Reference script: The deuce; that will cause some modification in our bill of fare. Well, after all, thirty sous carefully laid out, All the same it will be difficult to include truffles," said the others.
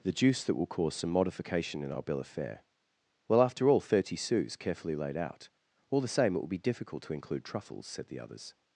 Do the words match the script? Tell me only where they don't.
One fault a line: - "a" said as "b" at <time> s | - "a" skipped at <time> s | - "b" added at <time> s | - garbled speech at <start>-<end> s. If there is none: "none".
- "deuce" said as "juice" at 0.1 s